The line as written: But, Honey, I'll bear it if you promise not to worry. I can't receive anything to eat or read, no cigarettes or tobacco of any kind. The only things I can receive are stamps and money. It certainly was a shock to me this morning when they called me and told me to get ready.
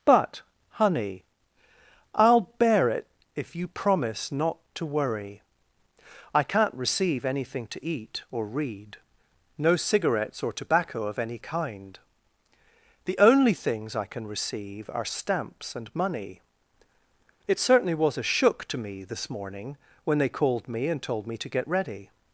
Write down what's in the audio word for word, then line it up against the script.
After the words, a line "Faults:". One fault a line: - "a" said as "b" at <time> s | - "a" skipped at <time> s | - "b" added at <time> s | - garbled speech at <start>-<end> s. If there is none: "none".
But, Honey, I'll bear it if you promise not to worry. I can't receive anything to eat or read, no cigarettes or tobacco of any kind. The only things I can receive are stamps and money. It certainly was a shook to me this morning when they called me and told me to get ready.
Faults:
- "shock" said as "shook" at 18.2 s